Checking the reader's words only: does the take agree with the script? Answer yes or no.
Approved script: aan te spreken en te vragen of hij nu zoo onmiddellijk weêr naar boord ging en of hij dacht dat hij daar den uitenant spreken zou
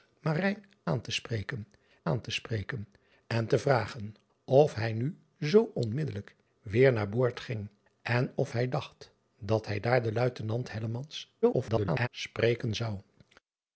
no